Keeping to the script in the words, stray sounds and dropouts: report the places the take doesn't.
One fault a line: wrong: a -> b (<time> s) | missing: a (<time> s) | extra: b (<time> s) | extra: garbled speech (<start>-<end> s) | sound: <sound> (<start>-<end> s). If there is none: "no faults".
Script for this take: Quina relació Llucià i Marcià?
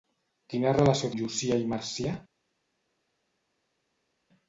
no faults